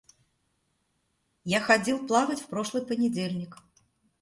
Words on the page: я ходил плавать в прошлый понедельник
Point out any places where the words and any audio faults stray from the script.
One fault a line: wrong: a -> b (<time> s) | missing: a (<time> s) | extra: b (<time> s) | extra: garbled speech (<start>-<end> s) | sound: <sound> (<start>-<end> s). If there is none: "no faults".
no faults